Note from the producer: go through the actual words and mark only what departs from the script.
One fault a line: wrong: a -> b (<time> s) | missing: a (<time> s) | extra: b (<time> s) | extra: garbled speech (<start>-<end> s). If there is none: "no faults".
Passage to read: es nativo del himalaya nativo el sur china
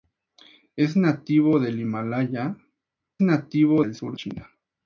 no faults